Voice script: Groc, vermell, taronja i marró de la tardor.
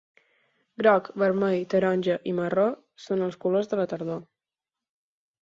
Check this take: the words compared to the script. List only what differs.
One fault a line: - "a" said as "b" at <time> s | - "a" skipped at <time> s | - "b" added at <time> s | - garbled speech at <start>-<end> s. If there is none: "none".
- "són els colors" added at 3.0 s